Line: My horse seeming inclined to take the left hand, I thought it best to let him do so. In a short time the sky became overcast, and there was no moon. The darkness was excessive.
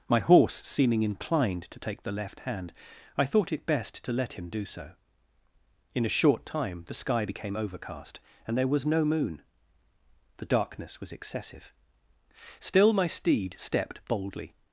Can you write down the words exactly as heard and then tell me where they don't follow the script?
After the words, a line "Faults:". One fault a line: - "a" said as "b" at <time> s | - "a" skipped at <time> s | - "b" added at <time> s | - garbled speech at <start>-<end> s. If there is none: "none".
My horse seeming inclined to take the left hand, I thought it best to let him do so. In a short time the sky became overcast, and there was no moon. The darkness was excessive. Still my steed stepped boldly
Faults:
- "Still my steed stepped boldly" added at 12.6 s